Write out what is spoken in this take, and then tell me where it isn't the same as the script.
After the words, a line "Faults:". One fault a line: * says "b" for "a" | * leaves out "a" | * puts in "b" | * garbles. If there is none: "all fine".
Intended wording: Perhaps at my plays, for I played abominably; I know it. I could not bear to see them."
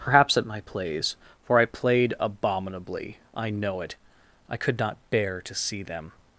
Perhaps at my plays, for I played abominably; I know it. I could not bear to see them."
Faults:
all fine